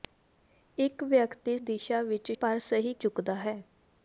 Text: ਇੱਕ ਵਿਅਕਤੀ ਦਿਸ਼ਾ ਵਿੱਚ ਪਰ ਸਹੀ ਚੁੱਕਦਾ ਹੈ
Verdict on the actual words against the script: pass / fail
pass